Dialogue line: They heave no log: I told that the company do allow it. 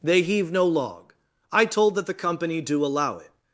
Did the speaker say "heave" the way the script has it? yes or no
yes